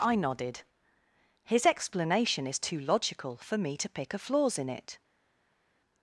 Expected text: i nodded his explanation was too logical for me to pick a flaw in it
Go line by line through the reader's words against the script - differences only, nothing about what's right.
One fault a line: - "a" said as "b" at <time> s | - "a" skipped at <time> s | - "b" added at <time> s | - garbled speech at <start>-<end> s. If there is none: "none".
- "was" said as "is" at 2.5 s
- "flaw" said as "flaws" at 4.2 s